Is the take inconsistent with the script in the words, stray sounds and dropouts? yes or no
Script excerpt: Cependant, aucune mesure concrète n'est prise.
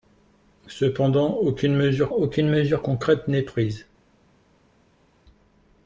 yes